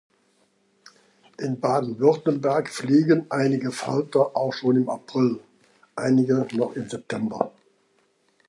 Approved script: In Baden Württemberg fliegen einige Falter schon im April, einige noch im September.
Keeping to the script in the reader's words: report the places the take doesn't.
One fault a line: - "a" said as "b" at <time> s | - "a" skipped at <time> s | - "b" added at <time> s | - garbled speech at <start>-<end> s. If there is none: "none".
- "auch" added at 4.3 s